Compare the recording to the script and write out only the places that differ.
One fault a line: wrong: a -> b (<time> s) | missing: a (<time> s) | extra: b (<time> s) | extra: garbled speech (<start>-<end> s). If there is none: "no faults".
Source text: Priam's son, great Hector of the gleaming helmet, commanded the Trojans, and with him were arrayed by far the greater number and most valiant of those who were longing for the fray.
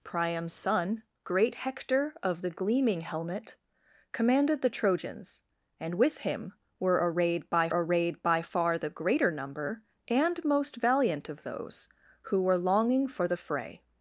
extra: arrayed by (7.7 s)